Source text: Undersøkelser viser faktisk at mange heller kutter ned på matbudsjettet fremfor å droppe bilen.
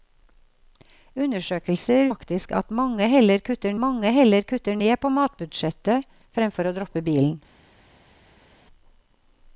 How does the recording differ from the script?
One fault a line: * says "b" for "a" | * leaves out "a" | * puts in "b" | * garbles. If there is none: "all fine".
* leaves out "viser"
* puts in "mange heller kutter"